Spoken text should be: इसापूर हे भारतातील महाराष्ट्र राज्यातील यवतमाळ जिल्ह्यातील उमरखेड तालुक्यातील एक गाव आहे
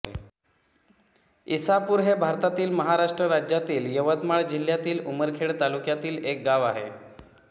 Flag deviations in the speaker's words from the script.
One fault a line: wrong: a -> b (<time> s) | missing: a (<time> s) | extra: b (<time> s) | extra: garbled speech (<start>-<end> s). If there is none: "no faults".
no faults